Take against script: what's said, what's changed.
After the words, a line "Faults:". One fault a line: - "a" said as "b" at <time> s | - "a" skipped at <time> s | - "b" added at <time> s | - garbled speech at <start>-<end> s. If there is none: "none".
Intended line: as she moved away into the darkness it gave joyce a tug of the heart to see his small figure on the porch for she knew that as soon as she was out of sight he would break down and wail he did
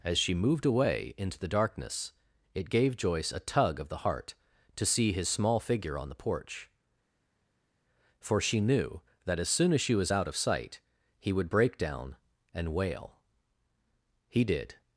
as she moved away into the darkness it gave joyce a tug of the heart to see his small figure on the porch for she knew that as soon as she was out of sight he would break down and wail he did
Faults:
none